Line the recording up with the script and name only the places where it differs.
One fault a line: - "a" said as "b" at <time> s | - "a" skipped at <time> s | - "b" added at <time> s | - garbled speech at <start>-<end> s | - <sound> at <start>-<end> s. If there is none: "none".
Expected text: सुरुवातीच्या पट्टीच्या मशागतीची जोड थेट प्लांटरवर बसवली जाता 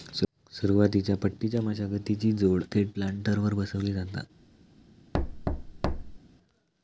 - thud at 5.1-6.2 s